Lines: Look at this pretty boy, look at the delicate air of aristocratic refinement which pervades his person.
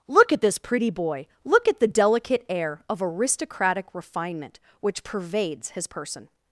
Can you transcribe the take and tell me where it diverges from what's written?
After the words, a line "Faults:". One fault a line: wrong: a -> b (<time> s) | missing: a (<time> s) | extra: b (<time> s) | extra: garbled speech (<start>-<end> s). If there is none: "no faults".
Look at this pretty boy, look at the delicate air of aristocratic refinement which pervades his person.
Faults:
no faults